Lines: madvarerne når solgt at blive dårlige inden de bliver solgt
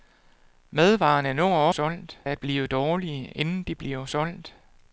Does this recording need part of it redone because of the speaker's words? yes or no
no